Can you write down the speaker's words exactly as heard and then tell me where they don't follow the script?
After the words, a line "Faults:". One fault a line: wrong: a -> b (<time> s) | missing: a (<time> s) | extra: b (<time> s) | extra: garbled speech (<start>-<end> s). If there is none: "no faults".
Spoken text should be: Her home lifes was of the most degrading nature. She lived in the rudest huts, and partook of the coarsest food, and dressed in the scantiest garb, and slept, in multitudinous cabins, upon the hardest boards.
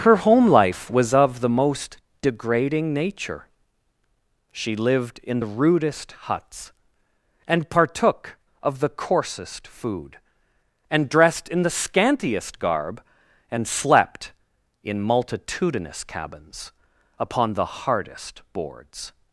Her home life was of the most degrading nature. She lived in the rudest huts, and partook of the coarsest food, and dressed in the scantiest garb, and slept, in multitudinous cabins, upon the hardest boards.
Faults:
wrong: lifes -> life (0.5 s)